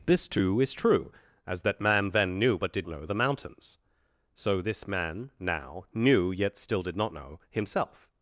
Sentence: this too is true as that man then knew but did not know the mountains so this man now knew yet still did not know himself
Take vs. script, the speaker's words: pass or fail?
fail